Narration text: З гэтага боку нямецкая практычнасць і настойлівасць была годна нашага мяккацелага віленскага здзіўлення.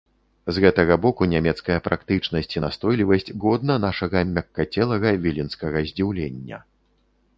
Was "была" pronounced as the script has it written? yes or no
no